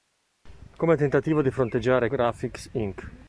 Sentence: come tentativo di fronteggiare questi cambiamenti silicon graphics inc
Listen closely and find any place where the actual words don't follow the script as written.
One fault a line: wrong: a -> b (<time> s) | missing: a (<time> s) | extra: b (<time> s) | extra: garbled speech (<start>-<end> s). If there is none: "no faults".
missing: questi cambiamenti silicon (2.1 s)